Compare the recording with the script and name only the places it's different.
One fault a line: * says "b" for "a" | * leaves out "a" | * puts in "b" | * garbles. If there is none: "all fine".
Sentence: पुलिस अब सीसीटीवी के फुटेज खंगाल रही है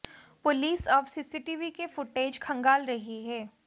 all fine